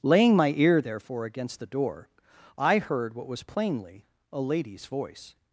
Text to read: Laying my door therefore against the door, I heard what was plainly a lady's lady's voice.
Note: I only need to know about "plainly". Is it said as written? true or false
true